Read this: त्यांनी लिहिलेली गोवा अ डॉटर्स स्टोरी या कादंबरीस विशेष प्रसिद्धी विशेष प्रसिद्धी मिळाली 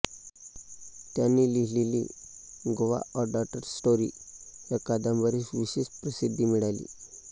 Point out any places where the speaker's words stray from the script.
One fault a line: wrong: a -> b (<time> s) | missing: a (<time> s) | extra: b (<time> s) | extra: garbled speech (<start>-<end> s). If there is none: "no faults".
missing: विशेष प्रसिद्धी (6.4 s)